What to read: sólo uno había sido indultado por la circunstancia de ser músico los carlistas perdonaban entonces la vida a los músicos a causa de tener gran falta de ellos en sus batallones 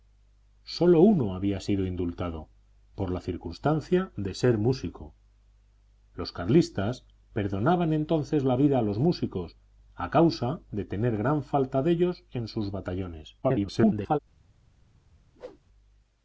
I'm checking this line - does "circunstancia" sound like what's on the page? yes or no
yes